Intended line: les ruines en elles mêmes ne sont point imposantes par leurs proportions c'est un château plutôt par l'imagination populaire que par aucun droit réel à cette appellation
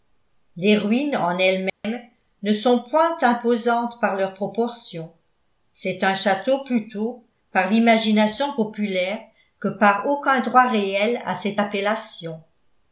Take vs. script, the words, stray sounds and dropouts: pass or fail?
fail